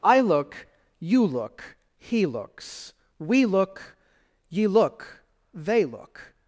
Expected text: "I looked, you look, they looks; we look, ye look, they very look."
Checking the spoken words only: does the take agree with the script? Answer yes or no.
no